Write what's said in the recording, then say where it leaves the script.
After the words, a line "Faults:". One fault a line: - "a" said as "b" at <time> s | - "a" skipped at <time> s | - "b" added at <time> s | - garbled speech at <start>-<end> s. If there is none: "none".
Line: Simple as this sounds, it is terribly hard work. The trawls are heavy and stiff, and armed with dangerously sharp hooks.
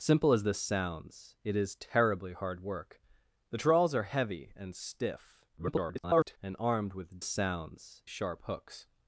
Simple as this sounds, it is terribly hard work. The trawls are heavy and stiff, [garbled] and armed with sounds sharp hooks.
Faults:
- garbled speech at 5.6-6.4 s
- "dangerously" said as "sounds" at 7.2 s